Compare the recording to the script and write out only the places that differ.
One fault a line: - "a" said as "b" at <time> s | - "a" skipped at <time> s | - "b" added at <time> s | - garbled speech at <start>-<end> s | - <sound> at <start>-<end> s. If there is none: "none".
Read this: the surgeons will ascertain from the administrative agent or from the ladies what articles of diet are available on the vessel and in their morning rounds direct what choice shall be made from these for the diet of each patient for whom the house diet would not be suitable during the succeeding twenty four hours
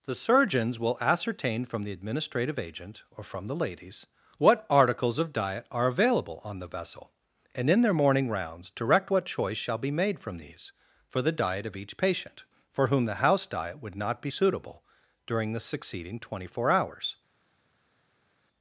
none